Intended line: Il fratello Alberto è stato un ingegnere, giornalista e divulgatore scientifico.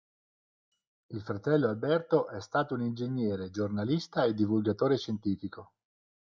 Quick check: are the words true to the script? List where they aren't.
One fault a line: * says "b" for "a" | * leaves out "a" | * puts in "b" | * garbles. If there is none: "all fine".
all fine